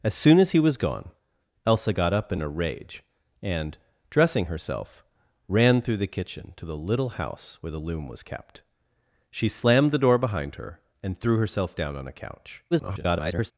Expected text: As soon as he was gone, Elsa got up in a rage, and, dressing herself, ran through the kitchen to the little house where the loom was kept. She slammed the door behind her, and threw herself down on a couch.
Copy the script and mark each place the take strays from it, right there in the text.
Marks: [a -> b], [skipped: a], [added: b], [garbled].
As soon as he was gone, Elsa got up in a rage, and, dressing herself, ran through the kitchen to the little house where the loom was kept. She slammed the door behind her, and threw herself down on a couch. [garbled]